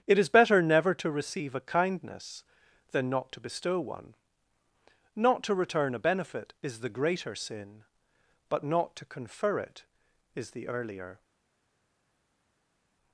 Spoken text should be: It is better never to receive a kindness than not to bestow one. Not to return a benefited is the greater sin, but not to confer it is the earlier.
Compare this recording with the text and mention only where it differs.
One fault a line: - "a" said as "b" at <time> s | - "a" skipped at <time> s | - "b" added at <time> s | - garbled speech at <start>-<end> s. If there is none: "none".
- "benefited" said as "benefit" at 6.0 s